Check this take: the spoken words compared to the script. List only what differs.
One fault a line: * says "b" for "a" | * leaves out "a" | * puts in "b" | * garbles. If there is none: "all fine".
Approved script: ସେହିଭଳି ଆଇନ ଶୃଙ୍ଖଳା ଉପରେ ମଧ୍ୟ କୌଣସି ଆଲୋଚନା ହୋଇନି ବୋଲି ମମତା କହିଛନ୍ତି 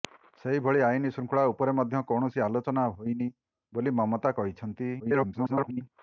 * garbles